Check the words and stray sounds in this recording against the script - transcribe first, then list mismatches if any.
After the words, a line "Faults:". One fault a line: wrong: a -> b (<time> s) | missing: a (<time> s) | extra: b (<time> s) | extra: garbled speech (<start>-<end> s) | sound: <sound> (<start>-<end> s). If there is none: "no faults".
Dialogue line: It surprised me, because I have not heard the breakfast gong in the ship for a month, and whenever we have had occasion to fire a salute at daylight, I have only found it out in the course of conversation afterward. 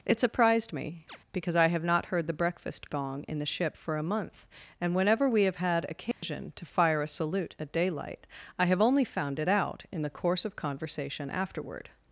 It surprised me, because I have not heard the breakfast gong in the ship for a month, and whenever we have had occasion to fire a salute at daylight, I have only found it out in the course of conversation afterward.
Faults:
sound: chirp (1.1-1.2 s)
sound: dropout (6.1-6.2 s)